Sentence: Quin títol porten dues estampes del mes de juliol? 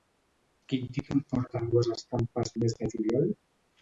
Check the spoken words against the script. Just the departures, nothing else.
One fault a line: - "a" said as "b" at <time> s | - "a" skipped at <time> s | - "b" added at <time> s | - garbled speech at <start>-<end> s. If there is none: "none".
- "del" skipped at 2.5 s